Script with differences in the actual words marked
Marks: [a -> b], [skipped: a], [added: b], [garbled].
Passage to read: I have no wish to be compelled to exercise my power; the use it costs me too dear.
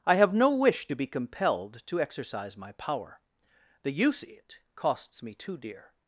I have no wish to be compelled to exercise my power; the use it costs me too dear.